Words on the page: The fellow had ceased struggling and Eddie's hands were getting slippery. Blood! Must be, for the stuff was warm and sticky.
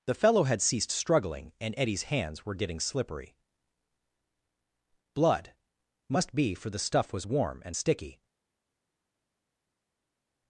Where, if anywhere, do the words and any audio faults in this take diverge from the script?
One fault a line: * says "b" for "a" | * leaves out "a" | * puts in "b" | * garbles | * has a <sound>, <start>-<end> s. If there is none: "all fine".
all fine